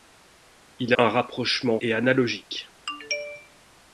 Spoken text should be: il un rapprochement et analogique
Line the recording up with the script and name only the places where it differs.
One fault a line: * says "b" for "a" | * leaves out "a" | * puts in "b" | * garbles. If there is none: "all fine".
all fine